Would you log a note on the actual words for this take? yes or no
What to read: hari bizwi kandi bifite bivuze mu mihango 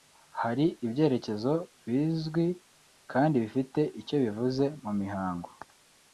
yes